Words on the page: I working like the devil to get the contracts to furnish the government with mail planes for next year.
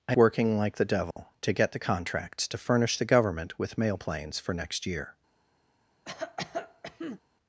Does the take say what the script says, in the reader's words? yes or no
yes